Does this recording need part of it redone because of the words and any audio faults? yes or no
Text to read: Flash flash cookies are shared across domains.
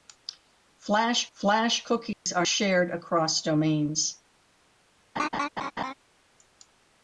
yes